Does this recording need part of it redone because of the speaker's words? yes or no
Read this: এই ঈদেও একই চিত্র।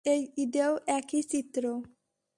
no